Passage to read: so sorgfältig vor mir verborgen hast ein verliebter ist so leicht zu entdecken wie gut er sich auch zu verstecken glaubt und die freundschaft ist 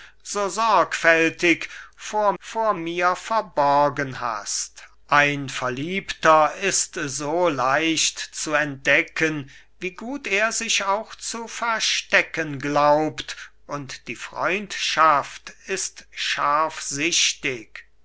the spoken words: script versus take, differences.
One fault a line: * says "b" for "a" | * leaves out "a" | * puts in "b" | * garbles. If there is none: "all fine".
* puts in "vor"